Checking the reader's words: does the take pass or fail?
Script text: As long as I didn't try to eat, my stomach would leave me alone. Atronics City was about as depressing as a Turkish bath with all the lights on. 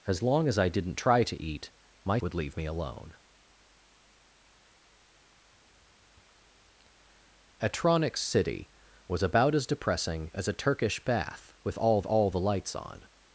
fail